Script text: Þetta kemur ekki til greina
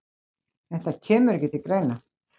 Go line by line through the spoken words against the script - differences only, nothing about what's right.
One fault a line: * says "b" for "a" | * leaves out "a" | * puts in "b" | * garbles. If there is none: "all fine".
all fine